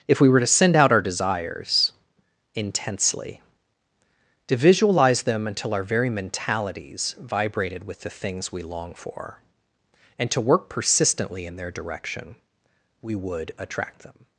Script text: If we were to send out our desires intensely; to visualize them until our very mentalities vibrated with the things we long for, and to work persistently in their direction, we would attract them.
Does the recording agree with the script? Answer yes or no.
yes